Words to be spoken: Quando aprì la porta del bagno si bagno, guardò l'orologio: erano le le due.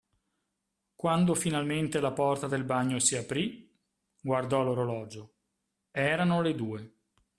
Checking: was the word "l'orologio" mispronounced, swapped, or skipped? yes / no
no